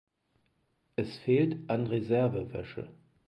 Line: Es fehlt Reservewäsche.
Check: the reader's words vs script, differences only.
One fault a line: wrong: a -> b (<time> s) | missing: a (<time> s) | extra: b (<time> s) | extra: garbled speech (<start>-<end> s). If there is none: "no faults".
extra: an (1.7 s)